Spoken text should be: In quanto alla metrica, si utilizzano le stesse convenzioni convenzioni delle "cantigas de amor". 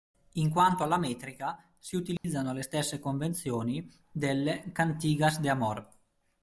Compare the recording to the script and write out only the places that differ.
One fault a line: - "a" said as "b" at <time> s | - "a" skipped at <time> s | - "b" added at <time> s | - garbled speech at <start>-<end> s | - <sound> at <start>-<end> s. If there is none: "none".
- dropout at 2.2-2.2 s
- "convenzioni" skipped at 3.8 s